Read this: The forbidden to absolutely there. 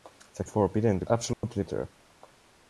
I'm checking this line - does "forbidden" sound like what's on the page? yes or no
yes